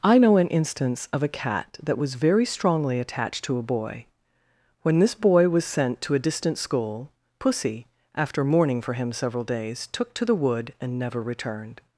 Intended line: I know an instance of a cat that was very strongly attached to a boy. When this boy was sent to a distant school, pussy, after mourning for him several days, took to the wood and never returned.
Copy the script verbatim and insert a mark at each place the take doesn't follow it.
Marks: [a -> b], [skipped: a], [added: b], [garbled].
I know an instance of a cat that was very strongly attached to a boy. When this boy was sent to a distant school, pussy, after mourning for him several days, took to the wood and never returned.